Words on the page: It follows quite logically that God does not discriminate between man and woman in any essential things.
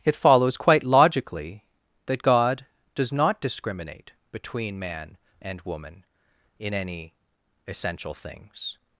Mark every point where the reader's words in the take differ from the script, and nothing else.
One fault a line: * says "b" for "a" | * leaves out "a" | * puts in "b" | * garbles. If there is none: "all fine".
all fine